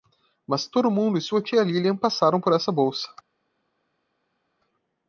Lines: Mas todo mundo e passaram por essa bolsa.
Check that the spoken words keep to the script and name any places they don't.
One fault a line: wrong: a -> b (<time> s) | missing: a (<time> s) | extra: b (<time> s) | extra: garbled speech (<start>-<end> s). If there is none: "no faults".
extra: sua tia Lilian (1.2 s)